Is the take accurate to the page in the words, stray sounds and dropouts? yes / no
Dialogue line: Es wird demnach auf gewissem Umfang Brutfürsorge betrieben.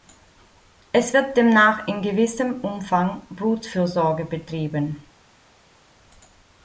no